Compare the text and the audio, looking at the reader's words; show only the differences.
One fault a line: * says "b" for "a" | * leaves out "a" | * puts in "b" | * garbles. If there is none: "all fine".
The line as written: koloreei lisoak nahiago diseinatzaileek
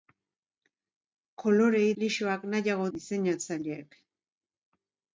all fine